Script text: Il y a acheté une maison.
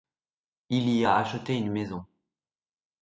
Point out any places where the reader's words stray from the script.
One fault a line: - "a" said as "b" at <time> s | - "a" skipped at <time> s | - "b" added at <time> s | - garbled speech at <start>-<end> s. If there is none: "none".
none